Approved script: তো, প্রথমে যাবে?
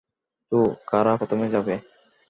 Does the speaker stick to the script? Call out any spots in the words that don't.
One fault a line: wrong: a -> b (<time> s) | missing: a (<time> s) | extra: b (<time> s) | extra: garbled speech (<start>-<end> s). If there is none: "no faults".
extra: কারা (0.9 s)